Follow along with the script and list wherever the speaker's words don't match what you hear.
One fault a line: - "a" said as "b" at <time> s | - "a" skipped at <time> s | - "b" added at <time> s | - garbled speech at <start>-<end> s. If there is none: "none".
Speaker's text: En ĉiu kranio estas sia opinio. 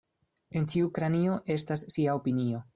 none